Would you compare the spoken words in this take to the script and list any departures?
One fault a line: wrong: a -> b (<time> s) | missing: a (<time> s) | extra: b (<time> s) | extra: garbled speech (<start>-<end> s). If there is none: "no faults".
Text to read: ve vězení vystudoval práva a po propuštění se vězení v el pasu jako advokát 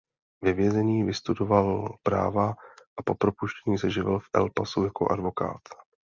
wrong: vězení -> živil (3.9 s)